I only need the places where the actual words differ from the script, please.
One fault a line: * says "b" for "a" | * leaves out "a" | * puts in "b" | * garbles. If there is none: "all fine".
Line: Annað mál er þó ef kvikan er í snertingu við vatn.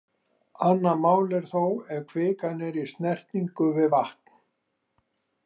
all fine